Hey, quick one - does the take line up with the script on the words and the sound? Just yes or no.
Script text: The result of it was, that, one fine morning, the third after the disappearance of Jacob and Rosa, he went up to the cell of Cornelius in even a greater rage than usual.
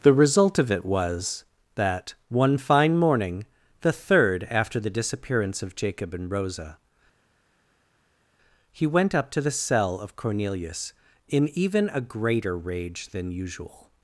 yes